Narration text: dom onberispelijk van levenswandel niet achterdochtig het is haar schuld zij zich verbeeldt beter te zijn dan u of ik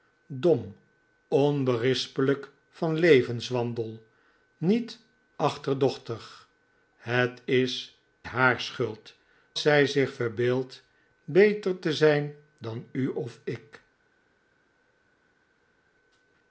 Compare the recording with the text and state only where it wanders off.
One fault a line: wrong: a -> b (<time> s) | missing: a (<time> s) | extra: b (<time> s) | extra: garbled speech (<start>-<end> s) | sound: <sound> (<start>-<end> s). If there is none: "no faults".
no faults